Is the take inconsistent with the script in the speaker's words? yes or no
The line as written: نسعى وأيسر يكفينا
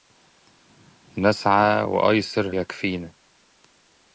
no